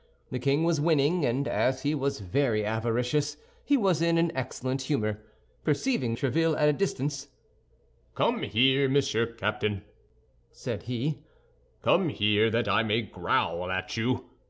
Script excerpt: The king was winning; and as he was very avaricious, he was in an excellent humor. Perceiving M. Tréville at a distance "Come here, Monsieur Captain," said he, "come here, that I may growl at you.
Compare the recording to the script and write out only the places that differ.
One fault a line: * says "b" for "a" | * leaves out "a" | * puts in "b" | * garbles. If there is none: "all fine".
all fine